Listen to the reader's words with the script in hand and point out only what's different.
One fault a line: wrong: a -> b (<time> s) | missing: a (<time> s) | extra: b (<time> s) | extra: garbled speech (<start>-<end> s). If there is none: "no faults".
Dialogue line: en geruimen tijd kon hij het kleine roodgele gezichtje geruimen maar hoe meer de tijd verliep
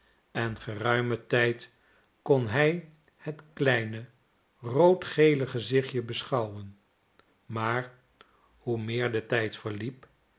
wrong: geruimen -> beschouwen (6.0 s)